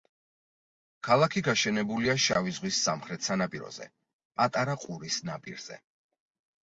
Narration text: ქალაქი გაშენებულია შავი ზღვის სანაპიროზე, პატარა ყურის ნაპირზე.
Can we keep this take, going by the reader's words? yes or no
no